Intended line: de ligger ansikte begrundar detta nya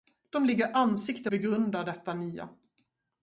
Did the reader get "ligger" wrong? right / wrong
right